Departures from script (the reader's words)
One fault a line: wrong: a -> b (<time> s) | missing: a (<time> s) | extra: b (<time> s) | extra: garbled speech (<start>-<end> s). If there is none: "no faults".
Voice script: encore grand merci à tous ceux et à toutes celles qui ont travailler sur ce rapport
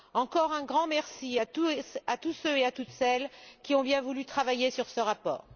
extra: un (0.5 s)
extra: bien voulu (3.8 s)